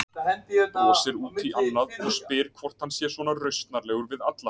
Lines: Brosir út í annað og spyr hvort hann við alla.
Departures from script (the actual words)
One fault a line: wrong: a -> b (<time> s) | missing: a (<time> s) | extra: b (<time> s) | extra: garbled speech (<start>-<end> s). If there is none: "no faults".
extra: sé svona rausnarlegur (2.9 s)